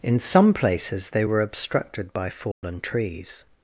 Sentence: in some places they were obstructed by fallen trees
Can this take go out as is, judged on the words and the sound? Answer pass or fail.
fail